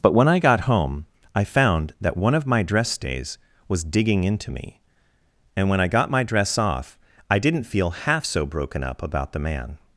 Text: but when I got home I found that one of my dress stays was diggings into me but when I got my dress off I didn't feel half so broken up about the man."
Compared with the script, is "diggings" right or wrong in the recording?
wrong